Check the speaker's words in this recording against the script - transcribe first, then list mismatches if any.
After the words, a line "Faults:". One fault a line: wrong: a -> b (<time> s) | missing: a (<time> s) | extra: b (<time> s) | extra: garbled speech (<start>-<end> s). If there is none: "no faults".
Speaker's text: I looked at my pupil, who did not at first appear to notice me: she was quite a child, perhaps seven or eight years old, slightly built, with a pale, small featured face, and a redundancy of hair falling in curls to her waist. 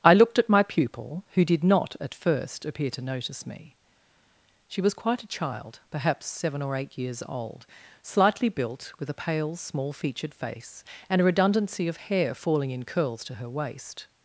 I looked at my pupil, who did not at first appear to notice me: she was quite a child, perhaps seven or eight years old, slightly built, with a pale, small featured face, and a redundancy of hair falling in curls to her waist.
Faults:
no faults